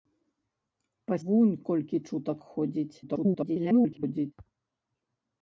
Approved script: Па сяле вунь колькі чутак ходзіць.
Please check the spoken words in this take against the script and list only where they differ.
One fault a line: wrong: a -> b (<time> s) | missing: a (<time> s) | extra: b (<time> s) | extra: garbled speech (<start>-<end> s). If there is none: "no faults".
missing: сяле (1.1 s)
extra: garbled speech (3.0-4.3 s)